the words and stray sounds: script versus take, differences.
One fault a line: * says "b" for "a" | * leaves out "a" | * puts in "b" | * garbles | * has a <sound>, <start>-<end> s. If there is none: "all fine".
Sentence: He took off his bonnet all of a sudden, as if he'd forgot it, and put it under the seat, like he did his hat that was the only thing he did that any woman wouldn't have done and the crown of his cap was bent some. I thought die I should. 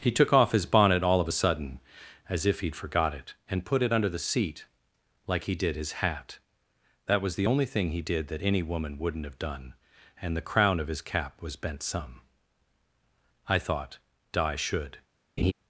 * says "di" for "die I"
* has a laugh, 15.4-15.5 s